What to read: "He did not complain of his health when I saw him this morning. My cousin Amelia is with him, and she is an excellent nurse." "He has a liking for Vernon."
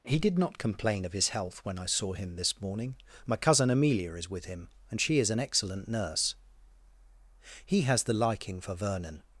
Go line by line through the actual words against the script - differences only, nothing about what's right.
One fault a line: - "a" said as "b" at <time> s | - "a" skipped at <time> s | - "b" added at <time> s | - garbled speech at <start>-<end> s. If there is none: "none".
- "a" said as "the" at 8.0 s